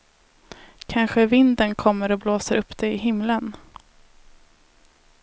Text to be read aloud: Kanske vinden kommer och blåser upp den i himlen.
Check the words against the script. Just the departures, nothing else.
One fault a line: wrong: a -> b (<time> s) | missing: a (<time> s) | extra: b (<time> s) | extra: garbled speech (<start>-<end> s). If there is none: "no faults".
wrong: den -> det (2.8 s)